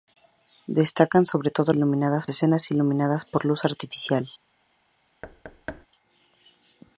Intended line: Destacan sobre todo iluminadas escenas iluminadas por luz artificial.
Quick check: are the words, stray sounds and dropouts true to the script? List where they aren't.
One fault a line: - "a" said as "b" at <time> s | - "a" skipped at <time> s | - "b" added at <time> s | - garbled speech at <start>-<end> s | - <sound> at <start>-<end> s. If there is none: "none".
- thud at 5.2-5.9 s